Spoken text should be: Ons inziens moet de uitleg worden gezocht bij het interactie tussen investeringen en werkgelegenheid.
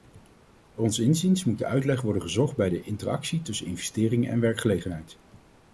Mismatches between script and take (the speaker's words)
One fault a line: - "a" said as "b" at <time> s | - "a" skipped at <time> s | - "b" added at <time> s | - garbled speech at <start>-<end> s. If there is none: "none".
- "het" said as "de" at 2.7 s